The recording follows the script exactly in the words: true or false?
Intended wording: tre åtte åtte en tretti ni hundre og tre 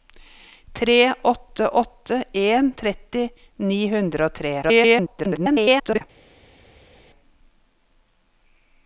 false